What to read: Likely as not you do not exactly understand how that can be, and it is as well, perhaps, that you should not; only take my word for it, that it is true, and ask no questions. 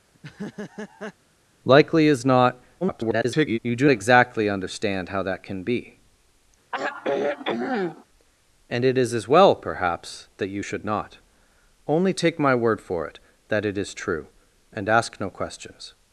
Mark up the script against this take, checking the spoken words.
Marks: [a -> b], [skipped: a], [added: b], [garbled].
Likely as not [garbled] you do [skipped: not] exactly understand how that can be, and it is as well, perhaps, that you should not; only take my word for it, that it is true, and ask no questions.